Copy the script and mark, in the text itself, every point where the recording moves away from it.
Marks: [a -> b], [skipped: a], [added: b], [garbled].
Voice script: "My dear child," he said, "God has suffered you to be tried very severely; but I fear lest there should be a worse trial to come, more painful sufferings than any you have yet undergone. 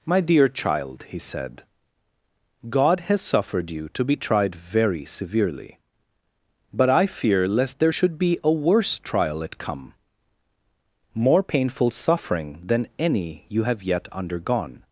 "My dear child," he said, "God has suffered you to be tried very severely; but I fear lest there should be a worse trial [to -> at] come, more painful [sufferings -> suffering] than any you have yet undergone.